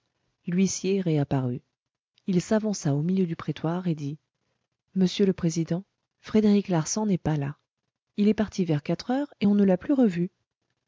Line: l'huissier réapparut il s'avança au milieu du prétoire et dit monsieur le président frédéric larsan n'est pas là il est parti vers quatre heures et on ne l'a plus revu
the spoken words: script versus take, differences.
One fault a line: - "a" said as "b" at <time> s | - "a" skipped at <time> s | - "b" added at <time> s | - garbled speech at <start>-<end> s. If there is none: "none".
none